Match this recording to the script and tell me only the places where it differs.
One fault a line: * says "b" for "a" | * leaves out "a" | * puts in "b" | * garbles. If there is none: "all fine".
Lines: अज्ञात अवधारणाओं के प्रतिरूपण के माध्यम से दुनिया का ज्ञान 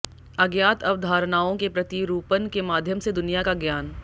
all fine